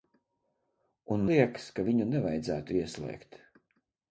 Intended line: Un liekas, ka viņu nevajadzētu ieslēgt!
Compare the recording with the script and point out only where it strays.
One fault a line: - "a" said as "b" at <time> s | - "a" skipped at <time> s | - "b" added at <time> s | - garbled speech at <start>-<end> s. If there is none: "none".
none